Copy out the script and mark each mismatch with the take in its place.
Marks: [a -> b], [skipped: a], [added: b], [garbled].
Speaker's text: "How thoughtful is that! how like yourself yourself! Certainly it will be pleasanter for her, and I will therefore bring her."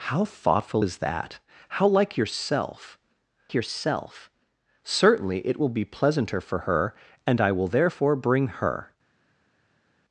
"How thoughtful is that! how like yourself yourself! Certainly it will be pleasanter for her, and I will therefore bring her."